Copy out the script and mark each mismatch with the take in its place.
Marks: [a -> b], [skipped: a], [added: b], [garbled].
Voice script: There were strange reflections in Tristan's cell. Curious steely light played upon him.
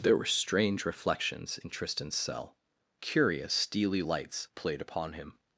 There were strange reflections in Tristan's cell. Curious steely [light -> lights] played upon him.